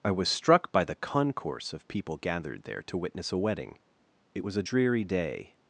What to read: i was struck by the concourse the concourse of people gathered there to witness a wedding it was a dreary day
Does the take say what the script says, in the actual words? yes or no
no